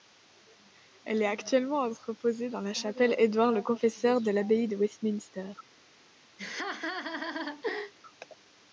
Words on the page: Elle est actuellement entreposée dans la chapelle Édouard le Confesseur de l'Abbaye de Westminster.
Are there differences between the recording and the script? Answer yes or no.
no